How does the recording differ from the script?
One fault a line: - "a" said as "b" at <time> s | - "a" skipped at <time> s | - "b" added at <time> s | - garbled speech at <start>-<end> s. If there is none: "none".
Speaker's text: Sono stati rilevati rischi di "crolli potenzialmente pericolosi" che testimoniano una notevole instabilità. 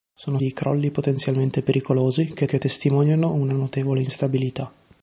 - "stati rilevati rischi" skipped at 0.4 s
- "che" added at 2.5 s